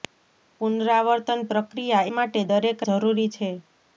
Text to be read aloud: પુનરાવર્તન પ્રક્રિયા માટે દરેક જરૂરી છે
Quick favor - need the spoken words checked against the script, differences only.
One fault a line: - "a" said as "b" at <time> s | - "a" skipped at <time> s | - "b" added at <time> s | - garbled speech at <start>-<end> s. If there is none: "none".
none